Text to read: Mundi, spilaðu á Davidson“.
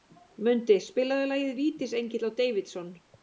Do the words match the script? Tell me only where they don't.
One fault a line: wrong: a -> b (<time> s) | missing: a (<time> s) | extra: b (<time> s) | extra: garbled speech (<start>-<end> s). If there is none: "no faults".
extra: lagið Vítisengill (1.3 s)